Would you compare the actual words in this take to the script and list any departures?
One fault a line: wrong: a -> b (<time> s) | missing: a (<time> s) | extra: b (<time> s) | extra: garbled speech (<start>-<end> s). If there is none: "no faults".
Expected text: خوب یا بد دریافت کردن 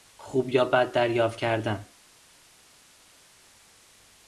no faults